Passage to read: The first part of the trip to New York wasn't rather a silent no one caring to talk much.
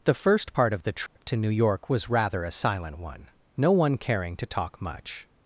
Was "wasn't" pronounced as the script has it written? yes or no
no